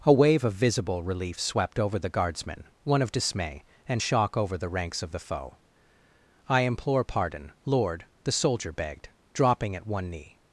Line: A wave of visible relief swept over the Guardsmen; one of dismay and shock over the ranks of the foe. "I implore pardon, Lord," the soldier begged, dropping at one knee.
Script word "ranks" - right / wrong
right